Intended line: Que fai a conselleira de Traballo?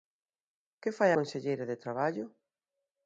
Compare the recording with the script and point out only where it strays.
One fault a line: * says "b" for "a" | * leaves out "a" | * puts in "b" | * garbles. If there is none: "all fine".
* leaves out "a"